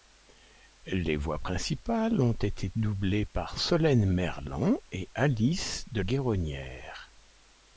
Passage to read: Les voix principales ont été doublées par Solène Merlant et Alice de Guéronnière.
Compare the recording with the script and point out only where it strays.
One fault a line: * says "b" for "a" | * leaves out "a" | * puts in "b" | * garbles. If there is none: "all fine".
all fine